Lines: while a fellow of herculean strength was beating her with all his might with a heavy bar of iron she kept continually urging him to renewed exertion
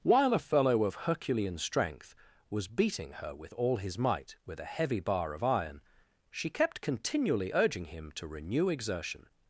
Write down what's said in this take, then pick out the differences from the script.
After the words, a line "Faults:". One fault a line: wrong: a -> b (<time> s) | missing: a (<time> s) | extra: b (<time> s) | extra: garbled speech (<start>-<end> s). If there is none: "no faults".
while a fellow of herculean strength was beating her with all his might with a heavy bar of iron she kept continually urging him to renew exertion
Faults:
wrong: renewed -> renew (8.3 s)